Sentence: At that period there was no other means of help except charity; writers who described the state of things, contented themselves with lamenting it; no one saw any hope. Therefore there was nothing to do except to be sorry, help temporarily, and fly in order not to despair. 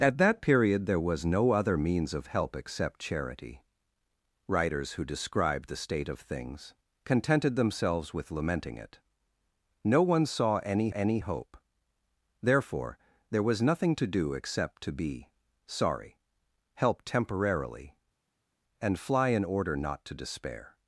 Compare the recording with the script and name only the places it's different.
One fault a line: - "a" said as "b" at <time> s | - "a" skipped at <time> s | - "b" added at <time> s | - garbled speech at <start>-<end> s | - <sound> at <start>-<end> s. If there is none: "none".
- "any" added at 10.9 s